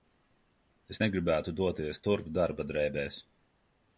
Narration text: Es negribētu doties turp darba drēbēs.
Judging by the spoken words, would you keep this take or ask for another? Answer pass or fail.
pass